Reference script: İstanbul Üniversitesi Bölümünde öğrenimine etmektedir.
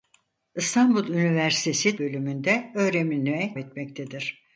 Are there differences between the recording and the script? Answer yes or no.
no